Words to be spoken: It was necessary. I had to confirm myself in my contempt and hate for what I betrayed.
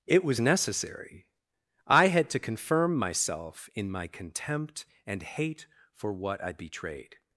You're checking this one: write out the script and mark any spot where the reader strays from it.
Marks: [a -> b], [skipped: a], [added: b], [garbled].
It was necessary. I had to confirm myself in my contempt and hate for what I betrayed.